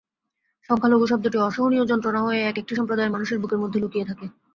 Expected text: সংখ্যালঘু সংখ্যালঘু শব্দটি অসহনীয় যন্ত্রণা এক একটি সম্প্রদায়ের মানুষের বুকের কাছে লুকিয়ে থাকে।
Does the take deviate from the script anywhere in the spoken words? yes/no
yes